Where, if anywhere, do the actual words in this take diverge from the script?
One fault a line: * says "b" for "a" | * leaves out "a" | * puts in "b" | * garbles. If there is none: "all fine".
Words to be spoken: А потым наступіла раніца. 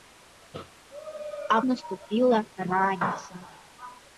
* leaves out "потым"